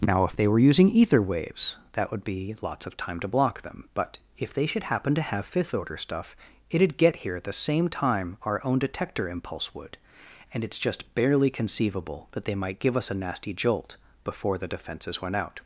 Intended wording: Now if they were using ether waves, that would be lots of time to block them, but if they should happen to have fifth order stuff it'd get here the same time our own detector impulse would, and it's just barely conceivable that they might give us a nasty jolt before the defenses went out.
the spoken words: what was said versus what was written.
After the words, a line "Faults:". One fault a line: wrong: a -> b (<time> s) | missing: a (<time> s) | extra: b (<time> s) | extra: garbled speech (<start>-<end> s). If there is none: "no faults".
Now if they were using ether waves, that would be lots of time to block them, but if they should happen to have fifth order stuff it'd get here at the same time our own detector impulse would, and it's just barely conceivable that they might give us a nasty jolt before the defenses went out.
Faults:
extra: at (7.3 s)